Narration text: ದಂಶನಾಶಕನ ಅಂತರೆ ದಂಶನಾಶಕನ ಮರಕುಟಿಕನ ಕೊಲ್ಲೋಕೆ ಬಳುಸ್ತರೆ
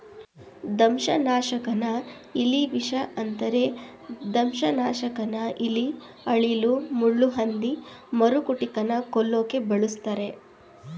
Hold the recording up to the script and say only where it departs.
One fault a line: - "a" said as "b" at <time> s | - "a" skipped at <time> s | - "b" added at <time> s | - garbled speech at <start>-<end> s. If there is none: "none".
- "ಇಲಿವಿಷ" added at 2.4 s
- "ಇಲಿ ಅಳಿಲು ಮುಳ್ಳುಹಂದಿ" added at 5.7 s